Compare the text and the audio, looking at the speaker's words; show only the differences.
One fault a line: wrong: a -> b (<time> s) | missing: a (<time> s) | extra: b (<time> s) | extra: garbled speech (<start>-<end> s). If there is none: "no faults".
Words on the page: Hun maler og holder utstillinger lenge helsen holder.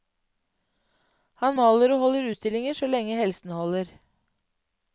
wrong: Hun -> Han (1.4 s)
extra: så (2.8 s)